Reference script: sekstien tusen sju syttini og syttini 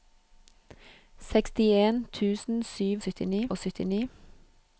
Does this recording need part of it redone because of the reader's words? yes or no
no